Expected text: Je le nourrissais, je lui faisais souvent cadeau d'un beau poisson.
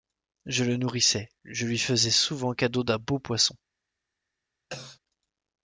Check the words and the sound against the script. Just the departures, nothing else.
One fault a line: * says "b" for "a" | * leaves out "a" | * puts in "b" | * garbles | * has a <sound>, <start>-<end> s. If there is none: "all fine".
* has a cough, 4.7-5.0 s